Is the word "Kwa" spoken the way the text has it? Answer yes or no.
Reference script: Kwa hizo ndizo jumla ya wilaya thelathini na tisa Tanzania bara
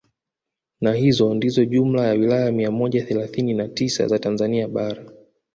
no